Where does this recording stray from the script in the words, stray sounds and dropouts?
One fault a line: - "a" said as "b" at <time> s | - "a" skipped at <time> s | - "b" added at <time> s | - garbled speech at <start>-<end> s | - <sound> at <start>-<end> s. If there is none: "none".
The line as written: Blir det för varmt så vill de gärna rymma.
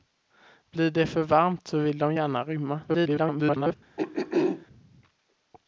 - garbled speech at 2.9-3.7 s
- throat clearing at 4.0-4.7 s